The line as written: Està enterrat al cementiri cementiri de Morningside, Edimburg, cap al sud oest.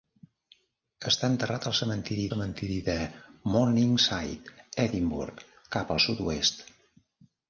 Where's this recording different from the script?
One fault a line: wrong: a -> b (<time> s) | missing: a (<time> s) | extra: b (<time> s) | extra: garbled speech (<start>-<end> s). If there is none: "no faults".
no faults